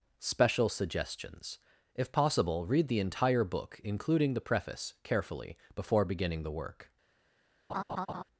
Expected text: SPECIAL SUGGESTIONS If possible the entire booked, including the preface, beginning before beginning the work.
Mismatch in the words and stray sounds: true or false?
true